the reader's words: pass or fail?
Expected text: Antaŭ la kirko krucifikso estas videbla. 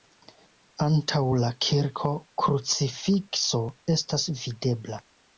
pass